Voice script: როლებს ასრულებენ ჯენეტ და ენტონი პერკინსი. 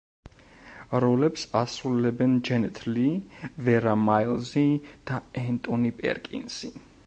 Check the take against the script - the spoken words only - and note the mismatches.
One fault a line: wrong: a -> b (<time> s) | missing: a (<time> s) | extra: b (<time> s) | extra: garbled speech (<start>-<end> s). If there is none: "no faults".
extra: ლი ვერა მაილზი (2.9 s)